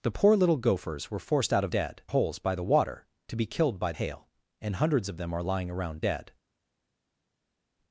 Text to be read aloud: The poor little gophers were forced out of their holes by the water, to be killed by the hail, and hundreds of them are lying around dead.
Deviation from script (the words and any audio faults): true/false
true